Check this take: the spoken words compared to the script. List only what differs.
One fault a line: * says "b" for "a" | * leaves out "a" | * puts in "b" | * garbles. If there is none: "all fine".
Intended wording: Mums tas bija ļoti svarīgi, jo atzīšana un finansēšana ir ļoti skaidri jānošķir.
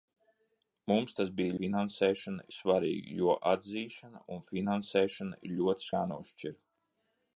* says "finansēšana" for "ļoti"
* leaves out "skaidri"